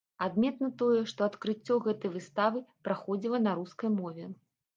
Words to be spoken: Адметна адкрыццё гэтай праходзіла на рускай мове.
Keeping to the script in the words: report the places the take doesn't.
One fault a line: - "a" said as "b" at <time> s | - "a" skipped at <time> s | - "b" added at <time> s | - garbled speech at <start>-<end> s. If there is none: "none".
- "тое што" added at 0.8 s
- "выставы" added at 2.2 s